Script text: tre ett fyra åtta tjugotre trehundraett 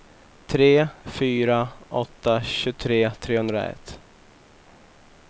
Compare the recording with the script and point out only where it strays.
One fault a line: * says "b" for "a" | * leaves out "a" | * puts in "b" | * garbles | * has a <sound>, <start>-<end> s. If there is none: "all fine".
* leaves out "ett"